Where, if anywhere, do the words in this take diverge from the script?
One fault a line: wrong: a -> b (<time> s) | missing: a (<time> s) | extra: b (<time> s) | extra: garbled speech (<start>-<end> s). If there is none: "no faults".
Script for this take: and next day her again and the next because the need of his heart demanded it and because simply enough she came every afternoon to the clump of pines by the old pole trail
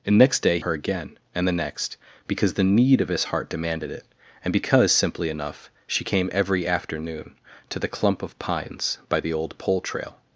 no faults